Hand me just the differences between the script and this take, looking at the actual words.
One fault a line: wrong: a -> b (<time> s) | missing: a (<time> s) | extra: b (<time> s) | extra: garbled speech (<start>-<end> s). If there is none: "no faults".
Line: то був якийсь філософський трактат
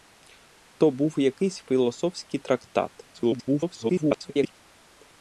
extra: garbled speech (3.1-4.6 s)